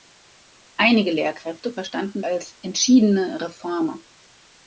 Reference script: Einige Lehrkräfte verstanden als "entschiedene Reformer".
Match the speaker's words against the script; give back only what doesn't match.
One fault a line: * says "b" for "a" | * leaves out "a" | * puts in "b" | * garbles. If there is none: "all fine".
all fine